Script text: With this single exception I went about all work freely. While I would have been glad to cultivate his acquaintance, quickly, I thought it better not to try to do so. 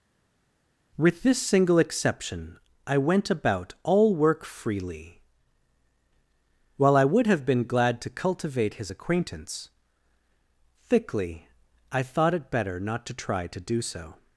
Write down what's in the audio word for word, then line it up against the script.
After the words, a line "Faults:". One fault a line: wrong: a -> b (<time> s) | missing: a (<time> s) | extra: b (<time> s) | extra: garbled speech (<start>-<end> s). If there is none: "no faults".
With this single exception I went about all work freely. While I would have been glad to cultivate his acquaintance, thickly, I thought it better not to try to do so.
Faults:
wrong: quickly -> thickly (10.9 s)